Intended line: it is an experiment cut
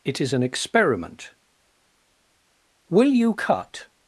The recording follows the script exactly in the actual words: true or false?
false